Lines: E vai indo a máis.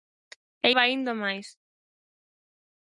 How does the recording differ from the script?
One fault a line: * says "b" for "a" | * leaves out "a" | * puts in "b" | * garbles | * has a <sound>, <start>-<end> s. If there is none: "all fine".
all fine